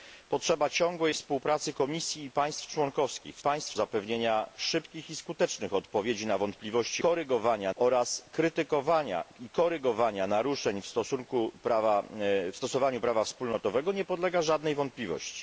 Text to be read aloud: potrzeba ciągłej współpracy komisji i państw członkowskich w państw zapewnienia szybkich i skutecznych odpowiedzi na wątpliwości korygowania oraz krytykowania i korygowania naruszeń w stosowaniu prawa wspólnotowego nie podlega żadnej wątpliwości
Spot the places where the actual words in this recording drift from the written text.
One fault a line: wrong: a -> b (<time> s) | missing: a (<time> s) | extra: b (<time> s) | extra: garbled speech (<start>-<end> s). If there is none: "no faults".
no faults